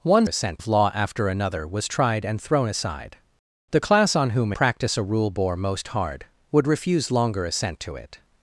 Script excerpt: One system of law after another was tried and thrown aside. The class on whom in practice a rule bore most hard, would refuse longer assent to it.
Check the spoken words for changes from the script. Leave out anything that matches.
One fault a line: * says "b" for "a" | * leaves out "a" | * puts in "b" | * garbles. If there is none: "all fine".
* says "assent" for "system"
* leaves out "in"